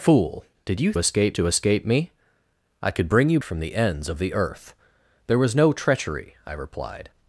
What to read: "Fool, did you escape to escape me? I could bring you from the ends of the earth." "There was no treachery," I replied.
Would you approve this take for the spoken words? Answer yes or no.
yes